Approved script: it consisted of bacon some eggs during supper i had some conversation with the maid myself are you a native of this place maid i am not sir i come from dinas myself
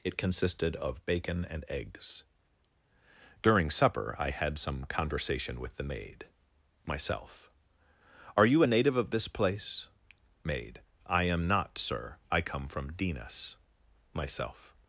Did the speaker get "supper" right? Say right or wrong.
right